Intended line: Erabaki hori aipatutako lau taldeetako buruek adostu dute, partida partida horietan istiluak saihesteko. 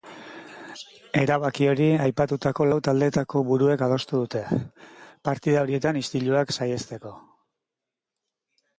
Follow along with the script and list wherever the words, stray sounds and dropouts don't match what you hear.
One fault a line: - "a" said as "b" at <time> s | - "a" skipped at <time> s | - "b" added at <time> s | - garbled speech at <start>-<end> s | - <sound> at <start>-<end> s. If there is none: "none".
- "partida" skipped at 5.7 s